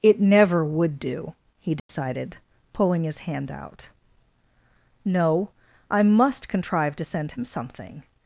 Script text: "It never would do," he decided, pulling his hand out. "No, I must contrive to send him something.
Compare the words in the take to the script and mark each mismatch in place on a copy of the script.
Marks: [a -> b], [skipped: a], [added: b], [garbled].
"It never would do," he decided, pulling his hand out. "No, I must contrive to send him something.